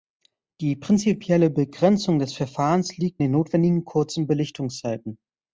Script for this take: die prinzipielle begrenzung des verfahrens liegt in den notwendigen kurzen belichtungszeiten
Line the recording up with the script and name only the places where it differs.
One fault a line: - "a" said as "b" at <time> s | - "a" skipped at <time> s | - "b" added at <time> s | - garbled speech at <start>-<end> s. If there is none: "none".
- "in" skipped at 3.2 s